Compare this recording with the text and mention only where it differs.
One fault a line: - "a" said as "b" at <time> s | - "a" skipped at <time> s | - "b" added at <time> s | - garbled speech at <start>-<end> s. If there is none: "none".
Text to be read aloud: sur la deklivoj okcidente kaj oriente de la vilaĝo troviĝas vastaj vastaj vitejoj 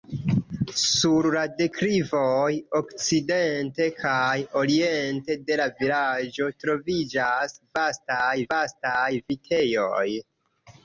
none